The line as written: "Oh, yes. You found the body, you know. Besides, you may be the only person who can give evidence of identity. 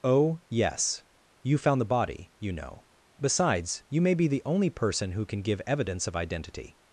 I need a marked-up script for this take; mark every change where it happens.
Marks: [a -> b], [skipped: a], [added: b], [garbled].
"Oh, yes. You found the body, you know. Besides, you may be the only person who can give evidence of identity.